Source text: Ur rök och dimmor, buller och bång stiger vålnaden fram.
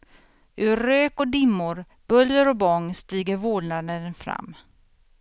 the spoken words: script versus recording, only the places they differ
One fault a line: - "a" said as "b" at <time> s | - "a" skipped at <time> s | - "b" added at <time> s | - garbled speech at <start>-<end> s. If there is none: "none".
none